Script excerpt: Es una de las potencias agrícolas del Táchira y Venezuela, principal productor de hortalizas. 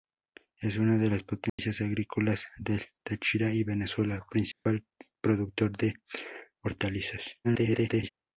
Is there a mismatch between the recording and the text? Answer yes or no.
yes